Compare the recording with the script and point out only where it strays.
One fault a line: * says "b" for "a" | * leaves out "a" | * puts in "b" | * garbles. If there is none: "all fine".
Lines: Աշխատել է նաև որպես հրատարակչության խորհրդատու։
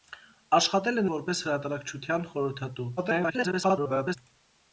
* leaves out "նաև"
* garbles